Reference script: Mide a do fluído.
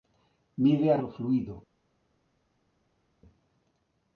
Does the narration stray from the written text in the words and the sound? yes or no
no